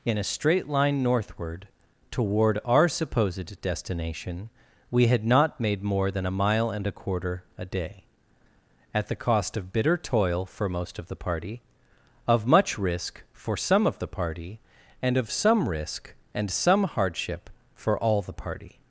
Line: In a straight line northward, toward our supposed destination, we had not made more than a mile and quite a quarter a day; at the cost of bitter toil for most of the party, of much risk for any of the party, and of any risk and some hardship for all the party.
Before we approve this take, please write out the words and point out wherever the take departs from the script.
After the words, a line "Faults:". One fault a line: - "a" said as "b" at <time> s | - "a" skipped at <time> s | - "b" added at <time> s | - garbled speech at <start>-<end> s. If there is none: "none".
In a straight line northward, toward our supposed destination, we had not made more than a mile and a quarter a day; at the cost of bitter toil for most of the party, of much risk for some of the party, and of some risk and some hardship for all the party.
Faults:
- "quite" skipped at 6.9 s
- "any" said as "some" at 13.6 s
- "any" said as "some" at 15.3 s